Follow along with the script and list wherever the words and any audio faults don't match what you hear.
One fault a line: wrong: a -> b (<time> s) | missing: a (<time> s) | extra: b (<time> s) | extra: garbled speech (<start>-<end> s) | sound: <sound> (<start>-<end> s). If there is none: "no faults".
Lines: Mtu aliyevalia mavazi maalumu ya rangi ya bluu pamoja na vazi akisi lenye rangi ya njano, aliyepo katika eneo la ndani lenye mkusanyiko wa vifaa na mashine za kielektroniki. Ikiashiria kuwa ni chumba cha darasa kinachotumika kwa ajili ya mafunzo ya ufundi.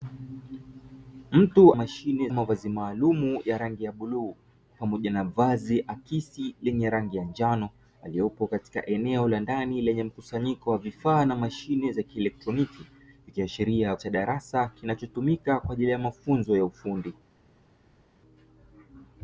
wrong: aliyevalia -> mashine (1.7 s)
missing: kuwa ni chumba (13.9 s)